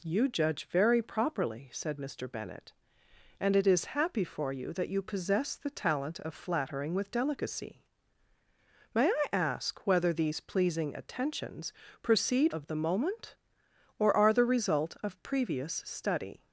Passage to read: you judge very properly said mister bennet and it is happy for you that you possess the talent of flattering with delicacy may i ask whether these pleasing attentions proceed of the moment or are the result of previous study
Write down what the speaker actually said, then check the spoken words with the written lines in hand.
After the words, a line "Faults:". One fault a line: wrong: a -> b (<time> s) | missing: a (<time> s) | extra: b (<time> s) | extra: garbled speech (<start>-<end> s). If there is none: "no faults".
you judge very properly said mister bennet and it is happy for you that you possess the talent of flattering with delicacy may i ask whether these pleasing attentions proceed of the moment or are the result of previous study
Faults:
no faults